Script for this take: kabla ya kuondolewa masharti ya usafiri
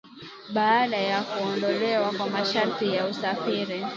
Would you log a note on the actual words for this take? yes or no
yes